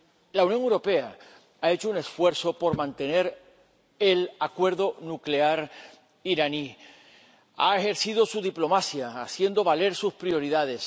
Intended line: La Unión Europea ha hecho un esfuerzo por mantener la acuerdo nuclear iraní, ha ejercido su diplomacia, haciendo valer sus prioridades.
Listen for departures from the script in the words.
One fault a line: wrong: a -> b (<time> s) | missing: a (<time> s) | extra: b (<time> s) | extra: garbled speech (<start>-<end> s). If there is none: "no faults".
wrong: la -> el (4.0 s)